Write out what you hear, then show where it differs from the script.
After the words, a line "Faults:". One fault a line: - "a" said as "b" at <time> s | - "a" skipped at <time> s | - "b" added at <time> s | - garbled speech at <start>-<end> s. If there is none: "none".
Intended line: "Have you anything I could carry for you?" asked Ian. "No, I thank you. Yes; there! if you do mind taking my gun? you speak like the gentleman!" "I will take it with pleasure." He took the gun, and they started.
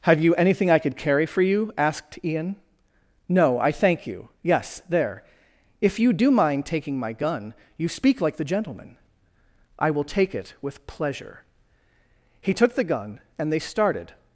"Have you anything I could carry for you?" asked Ian. "No, I thank you. Yes; there! if you do mind taking my gun? you speak like the gentleman!" "I will take it with pleasure." He took the gun, and they started.
Faults:
none